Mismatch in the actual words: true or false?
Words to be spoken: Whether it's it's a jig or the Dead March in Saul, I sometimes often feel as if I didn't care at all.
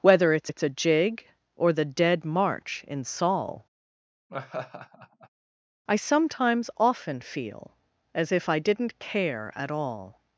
false